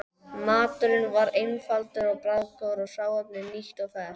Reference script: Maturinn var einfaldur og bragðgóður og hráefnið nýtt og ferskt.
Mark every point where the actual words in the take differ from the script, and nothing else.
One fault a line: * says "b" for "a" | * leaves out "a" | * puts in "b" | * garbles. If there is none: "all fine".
all fine